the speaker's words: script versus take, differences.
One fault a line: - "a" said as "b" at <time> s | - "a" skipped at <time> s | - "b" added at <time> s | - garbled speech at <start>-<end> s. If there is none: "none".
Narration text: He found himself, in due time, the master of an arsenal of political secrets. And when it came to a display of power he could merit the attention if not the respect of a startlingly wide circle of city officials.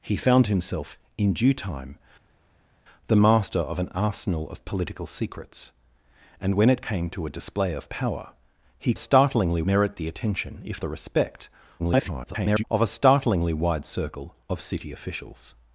- "could" said as "startlingly" at 9.0 s
- "not" skipped at 10.8 s
- garbled speech at 11.8-12.6 s